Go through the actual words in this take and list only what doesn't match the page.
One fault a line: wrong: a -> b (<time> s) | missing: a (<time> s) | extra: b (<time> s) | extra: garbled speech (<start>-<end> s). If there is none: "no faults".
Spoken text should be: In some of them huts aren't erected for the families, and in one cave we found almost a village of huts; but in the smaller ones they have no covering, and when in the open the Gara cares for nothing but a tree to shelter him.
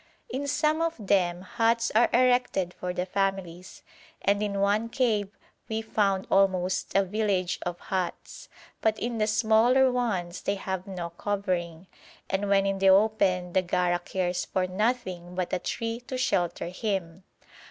wrong: aren't -> are (1.9 s)